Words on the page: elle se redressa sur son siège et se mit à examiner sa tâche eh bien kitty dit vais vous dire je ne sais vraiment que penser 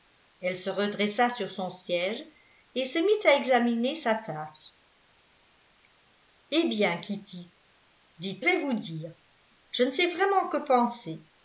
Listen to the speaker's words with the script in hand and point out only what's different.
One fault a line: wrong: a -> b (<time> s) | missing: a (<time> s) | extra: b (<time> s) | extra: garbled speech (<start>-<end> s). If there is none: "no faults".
no faults